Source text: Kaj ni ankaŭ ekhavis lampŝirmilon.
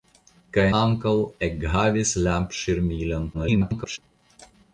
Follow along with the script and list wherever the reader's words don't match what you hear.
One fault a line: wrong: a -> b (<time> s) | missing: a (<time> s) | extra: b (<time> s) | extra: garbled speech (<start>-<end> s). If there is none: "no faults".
missing: ni (0.6 s)
extra: garbled speech (3.3-4.0 s)